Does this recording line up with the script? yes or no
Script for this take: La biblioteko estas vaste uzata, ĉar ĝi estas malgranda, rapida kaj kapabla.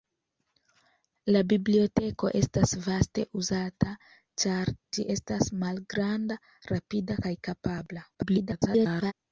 no